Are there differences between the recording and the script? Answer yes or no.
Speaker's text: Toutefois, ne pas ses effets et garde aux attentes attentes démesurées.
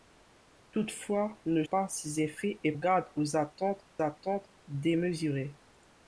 no